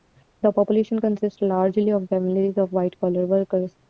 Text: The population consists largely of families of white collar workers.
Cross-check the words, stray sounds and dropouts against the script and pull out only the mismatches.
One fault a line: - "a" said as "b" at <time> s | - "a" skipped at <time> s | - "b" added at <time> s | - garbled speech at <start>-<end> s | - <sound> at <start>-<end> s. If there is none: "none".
none